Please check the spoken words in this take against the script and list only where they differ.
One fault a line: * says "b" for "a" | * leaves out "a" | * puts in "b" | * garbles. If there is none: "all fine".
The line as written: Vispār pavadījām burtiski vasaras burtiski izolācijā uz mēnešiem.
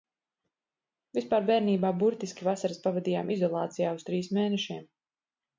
* says "bērnībā" for "pavadījām"
* says "pavadījām" for "burtiski"
* puts in "trīs"